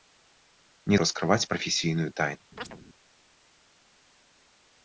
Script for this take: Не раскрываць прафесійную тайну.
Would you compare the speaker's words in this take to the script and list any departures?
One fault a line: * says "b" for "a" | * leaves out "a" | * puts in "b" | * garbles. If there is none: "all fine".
all fine